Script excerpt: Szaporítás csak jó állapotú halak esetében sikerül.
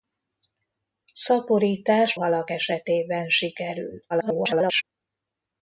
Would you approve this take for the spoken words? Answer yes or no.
no